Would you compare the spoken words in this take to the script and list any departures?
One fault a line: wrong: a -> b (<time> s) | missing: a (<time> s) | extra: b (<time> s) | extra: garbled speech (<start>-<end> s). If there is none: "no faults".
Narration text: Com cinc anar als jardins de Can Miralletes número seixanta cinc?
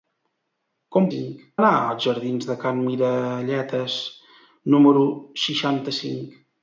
no faults